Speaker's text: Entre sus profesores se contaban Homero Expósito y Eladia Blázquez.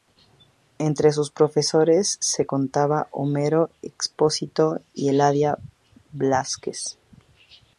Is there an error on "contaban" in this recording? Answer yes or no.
no